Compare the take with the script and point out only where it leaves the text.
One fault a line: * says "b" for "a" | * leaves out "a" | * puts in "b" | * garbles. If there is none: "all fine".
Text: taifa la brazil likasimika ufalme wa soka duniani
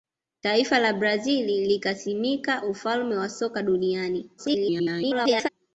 * garbles